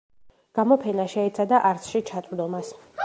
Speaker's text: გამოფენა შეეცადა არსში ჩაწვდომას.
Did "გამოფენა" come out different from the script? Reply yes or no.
no